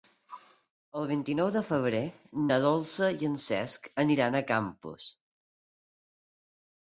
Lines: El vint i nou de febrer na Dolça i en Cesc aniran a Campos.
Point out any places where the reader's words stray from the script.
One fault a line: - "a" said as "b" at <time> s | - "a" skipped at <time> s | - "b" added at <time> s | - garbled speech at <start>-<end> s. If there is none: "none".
none